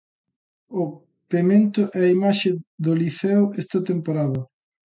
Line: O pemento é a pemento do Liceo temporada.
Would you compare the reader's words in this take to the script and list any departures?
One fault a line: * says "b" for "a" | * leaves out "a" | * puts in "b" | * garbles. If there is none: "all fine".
* says "imaxe" for "pemento"
* puts in "esta"